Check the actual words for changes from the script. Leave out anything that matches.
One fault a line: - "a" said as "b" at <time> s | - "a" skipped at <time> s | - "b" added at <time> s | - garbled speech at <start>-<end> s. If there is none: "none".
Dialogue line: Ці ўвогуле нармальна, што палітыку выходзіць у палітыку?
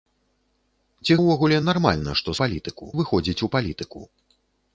none